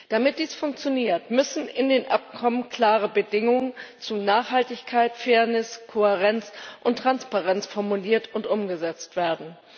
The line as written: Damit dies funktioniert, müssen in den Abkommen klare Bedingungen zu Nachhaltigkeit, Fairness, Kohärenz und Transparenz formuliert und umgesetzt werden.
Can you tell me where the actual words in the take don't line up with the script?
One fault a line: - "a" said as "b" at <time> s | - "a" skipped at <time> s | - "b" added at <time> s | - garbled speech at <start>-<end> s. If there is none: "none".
none